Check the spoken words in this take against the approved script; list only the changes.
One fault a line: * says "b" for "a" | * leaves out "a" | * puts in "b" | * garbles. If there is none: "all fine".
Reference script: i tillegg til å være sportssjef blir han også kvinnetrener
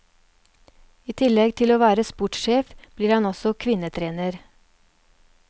all fine